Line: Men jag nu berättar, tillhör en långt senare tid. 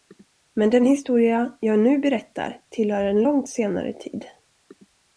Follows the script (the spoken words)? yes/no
no